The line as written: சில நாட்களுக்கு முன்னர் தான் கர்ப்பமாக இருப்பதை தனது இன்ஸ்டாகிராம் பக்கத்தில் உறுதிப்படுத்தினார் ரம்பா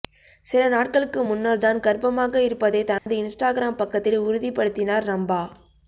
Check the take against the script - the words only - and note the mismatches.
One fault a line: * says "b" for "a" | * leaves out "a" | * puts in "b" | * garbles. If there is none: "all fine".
all fine